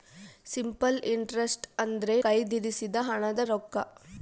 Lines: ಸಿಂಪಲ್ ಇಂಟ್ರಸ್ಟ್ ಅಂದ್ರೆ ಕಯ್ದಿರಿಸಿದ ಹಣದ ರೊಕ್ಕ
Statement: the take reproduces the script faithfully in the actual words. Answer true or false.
true